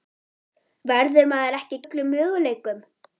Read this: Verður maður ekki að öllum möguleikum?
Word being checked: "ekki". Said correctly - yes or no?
yes